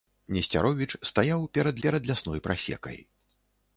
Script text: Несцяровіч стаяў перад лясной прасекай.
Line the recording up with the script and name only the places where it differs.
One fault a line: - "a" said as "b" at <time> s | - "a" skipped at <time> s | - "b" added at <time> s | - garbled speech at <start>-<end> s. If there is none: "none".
- "перад" added at 1.9 s